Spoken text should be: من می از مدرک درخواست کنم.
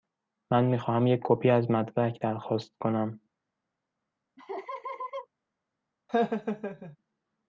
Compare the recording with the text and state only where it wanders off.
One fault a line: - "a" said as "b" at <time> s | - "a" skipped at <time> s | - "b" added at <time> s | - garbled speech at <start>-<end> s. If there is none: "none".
- "خواهم یک کپی" added at 0.8 s